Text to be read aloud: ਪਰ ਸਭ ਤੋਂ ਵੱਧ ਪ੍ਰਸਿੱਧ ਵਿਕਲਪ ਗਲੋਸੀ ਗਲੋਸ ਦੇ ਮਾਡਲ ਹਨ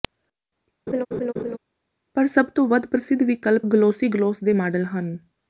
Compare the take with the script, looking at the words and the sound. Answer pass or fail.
fail